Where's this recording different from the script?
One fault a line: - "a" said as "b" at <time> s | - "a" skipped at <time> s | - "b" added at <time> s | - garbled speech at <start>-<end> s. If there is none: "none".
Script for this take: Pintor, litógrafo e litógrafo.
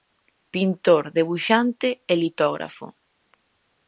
- "litógrafo" said as "debuxante" at 1.2 s